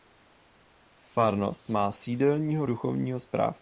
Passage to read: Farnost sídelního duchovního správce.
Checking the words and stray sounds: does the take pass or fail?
fail